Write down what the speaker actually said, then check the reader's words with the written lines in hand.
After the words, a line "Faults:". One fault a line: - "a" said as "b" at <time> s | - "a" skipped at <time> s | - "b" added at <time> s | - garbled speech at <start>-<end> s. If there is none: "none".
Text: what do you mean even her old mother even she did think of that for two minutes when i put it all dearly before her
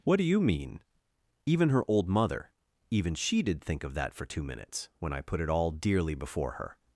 what do you mean even her old mother even she did think of that for two minutes when i put it all dearly before her
Faults:
none